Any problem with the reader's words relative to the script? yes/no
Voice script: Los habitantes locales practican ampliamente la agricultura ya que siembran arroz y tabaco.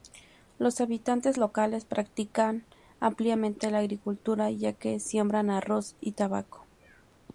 no